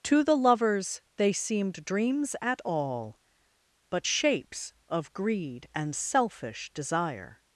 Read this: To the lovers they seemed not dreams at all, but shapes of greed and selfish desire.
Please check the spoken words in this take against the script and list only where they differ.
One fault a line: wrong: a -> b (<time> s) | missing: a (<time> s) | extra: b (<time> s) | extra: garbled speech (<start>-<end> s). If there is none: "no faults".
missing: not (1.9 s)